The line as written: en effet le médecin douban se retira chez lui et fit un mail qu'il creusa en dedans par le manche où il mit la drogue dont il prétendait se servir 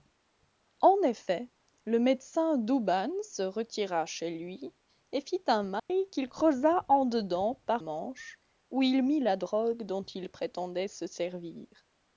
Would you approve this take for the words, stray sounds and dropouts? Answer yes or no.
no